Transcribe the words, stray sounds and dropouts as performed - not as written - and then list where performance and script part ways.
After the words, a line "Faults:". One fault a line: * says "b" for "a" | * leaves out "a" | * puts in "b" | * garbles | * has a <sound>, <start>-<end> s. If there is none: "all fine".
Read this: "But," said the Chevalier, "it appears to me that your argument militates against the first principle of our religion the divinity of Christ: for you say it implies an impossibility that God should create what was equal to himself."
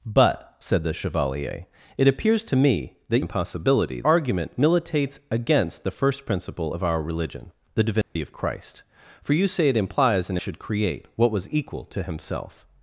"But," said the Chevalier, "it appears to me that impossibility argument militates against the first principle of our religion the divinity of Christ: for you say it implies an should create what was equal to himself."
Faults:
* says "impossibility" for "your"
* has a dropout, 8.0-8.2 s
* leaves out "impossibility that God"